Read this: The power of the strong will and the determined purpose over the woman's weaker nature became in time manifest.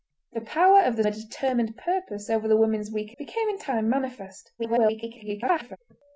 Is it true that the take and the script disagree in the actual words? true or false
true